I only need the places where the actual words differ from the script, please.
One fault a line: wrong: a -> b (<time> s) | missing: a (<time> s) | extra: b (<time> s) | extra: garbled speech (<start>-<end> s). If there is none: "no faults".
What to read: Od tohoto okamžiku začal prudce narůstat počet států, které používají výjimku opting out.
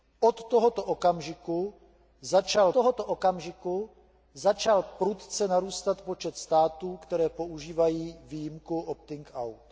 extra: tohoto okamžiku začal (2.7 s)